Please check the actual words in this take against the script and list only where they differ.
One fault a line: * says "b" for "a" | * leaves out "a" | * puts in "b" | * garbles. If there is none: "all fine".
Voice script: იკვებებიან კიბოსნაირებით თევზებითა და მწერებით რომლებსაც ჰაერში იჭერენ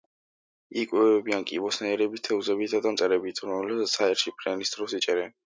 * puts in "ფრენის დროს"